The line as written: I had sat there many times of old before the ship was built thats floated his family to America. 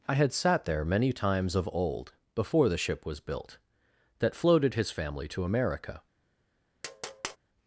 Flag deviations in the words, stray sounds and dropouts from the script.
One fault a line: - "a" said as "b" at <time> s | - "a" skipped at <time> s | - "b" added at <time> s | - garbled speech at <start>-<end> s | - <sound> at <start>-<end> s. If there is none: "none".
- "thats" said as "that" at 4.2 s
- tap at 6.8-7.4 s